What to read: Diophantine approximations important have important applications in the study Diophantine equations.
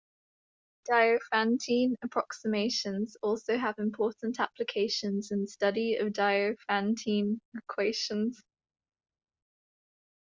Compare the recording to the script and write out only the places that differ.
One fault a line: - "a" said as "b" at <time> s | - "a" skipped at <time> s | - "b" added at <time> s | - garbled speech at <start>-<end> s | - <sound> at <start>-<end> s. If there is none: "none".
- "important" said as "also" at 3.2 s
- "of" added at 6.0 s